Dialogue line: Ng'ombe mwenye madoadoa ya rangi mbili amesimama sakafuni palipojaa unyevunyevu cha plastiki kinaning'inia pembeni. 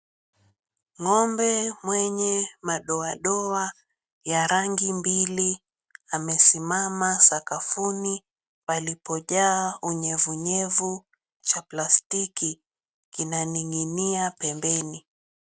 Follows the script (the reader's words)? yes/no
yes